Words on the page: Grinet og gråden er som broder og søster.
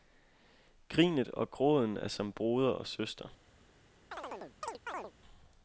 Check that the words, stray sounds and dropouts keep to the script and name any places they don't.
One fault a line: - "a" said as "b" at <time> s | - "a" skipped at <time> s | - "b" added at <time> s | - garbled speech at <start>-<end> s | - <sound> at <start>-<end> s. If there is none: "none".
- chirp at 4.1-5.1 s